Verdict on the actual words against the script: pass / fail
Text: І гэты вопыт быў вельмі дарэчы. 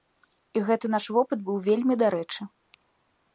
fail